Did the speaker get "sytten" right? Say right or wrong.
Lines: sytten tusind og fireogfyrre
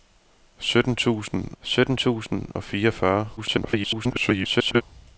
right